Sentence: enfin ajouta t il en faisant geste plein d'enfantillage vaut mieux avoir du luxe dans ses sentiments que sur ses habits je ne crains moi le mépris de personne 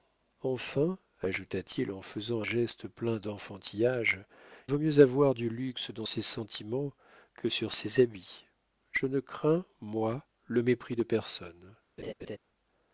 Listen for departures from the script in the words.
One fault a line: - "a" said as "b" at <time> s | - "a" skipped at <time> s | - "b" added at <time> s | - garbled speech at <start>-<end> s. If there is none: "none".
none